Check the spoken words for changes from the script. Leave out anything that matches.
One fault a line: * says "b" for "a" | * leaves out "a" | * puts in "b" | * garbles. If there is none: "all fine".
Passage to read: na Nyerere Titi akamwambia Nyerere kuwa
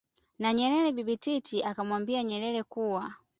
* puts in "Bibi"